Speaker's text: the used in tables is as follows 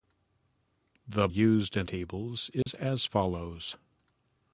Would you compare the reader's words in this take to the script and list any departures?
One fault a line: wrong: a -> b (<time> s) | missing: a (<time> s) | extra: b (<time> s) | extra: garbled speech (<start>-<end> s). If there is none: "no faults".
no faults